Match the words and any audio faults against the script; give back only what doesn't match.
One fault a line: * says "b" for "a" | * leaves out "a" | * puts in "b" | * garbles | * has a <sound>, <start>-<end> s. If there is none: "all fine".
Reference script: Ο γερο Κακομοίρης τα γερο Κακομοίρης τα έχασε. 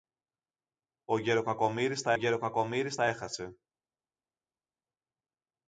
all fine